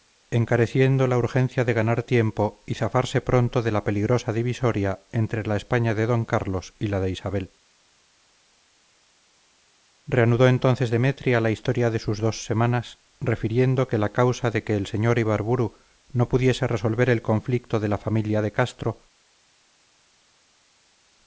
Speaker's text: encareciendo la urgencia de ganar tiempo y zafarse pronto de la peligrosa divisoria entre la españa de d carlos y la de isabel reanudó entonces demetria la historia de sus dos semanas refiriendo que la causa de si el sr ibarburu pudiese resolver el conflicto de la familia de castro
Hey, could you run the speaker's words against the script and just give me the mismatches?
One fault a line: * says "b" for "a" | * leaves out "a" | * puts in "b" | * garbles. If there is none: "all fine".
* says "que" for "si"
* puts in "no"